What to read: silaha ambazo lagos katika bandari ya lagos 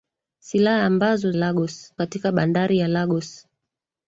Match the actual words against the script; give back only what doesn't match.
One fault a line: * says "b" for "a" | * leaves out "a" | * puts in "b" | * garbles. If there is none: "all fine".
all fine